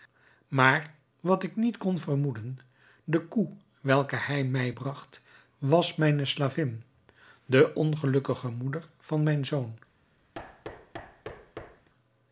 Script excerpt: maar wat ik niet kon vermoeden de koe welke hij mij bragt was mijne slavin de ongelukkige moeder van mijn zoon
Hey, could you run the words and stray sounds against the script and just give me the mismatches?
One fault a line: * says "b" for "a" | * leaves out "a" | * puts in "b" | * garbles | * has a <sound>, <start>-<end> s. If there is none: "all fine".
* has a thud, 10.3-11.9 s